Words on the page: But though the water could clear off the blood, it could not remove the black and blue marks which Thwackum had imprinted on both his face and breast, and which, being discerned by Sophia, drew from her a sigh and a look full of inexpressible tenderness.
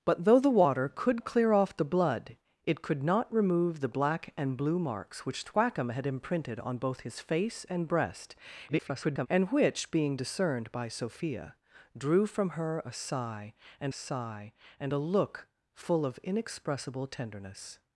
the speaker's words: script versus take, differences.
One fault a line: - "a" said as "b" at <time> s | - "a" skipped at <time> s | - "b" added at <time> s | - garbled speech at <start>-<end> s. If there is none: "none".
- garbled speech at 8.7-9.3 s
- "sigh and" added at 13.9 s